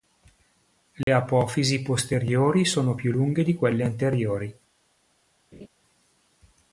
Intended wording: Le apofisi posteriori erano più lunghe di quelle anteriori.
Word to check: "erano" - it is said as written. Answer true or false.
false